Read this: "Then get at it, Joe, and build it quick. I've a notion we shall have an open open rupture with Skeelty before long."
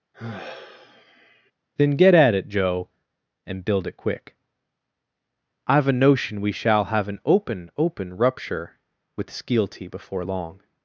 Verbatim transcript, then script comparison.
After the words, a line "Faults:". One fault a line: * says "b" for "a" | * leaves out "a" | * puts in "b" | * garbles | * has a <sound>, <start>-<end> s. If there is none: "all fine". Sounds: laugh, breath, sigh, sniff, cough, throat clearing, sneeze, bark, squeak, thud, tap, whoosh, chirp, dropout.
"Then get at it, Joe, and build it quick. I've a notion we shall have an open open rupture with Skeelty before long."
Faults:
* has a sigh, 0.1-1.5 s